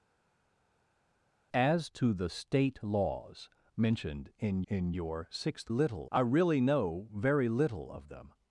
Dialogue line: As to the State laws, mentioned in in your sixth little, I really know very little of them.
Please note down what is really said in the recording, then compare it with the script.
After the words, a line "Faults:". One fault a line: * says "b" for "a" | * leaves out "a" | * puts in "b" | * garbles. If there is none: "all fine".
As to the State laws, mentioned in in your sixth little, I really know very little of them.
Faults:
all fine